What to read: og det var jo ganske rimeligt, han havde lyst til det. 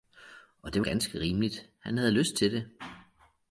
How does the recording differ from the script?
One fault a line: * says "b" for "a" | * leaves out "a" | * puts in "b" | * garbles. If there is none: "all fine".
* leaves out "var jo"